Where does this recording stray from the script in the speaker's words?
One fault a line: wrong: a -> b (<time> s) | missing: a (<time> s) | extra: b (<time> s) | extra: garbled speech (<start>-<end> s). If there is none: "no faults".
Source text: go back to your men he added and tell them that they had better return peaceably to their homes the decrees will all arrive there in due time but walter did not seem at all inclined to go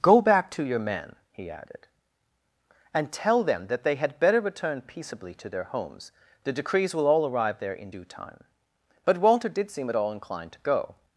missing: not (9.7 s)